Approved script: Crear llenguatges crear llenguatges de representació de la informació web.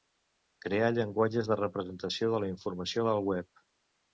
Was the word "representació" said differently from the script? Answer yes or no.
no